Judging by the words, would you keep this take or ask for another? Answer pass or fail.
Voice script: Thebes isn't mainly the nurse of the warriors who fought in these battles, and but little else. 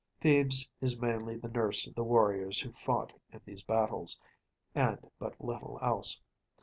fail